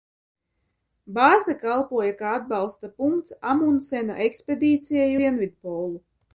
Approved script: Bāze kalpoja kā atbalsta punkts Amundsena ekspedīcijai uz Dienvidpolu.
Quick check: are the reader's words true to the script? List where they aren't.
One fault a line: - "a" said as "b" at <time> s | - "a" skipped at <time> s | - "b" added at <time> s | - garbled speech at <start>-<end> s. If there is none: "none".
- "uz" skipped at 5.1 s